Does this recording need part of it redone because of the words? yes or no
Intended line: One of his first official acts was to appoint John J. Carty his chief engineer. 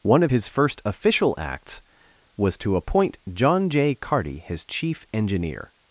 no